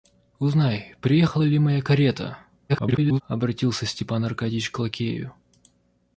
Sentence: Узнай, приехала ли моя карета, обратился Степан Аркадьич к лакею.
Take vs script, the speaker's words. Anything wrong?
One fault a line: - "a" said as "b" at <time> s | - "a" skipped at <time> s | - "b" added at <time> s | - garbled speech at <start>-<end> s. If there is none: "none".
- garbled speech at 2.7-3.2 s